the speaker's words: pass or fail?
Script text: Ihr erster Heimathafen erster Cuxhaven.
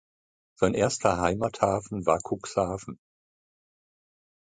fail